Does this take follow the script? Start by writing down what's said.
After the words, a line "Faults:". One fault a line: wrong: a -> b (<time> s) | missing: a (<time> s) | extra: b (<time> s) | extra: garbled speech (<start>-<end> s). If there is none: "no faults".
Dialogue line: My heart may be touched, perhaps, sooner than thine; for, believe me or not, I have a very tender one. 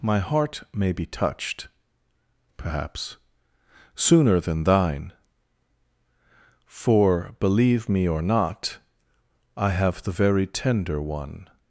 My heart may be touched, perhaps, sooner than thine; for, believe me or not, I have the very tender one.
Faults:
wrong: a -> the (10.0 s)